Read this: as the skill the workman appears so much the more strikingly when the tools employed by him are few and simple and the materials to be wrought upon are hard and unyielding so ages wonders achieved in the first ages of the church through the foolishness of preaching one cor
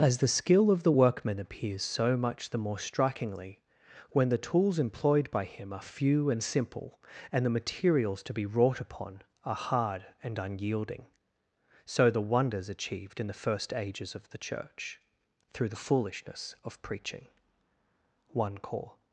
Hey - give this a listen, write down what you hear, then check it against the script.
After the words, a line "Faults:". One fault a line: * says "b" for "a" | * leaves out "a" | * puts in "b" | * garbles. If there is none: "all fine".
as the skill of the workman appears so much the more strikingly when the tools employed by him are few and simple and the materials to be wrought upon are hard and unyielding so the wonders achieved in the first ages of the church through the foolishness of preaching one cor
Faults:
* puts in "of"
* says "the" for "ages"